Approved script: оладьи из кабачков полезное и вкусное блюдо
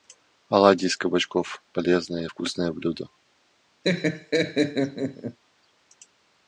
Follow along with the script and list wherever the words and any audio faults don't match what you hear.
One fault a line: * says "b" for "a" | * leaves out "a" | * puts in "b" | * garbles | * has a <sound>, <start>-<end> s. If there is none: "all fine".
* has a laugh, 3.8-5.4 s